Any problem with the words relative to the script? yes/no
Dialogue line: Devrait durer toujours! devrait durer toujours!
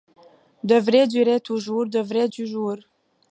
yes